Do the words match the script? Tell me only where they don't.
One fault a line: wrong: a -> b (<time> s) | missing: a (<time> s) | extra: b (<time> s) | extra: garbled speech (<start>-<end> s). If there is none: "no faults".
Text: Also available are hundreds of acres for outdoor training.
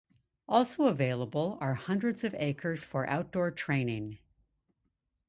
no faults